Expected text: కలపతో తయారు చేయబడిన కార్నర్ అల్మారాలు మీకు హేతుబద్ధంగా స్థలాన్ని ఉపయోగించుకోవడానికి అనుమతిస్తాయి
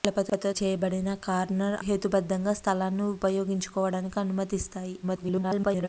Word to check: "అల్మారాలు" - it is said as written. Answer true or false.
false